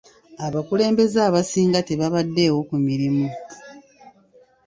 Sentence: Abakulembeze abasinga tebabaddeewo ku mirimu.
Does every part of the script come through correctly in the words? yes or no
yes